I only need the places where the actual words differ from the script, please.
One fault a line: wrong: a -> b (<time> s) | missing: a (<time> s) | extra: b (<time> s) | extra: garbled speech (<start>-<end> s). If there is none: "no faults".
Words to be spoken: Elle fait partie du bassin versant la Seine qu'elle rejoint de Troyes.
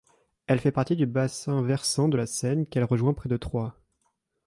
extra: de (2.1 s)
extra: près (3.1 s)